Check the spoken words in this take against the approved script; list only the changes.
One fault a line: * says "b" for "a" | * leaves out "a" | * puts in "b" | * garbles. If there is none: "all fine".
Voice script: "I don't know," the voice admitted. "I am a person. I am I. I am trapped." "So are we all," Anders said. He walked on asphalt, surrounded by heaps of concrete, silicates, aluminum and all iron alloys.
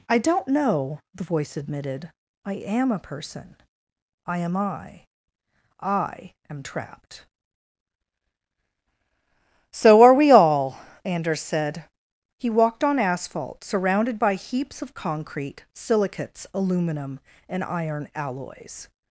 * leaves out "all"